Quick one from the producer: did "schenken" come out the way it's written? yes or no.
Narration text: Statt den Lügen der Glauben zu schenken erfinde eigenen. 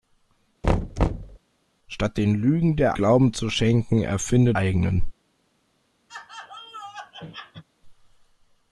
yes